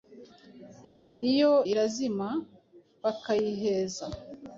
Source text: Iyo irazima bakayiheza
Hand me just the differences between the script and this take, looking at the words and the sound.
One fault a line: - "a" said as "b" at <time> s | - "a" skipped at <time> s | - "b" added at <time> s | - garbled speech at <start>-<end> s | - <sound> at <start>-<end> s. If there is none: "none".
none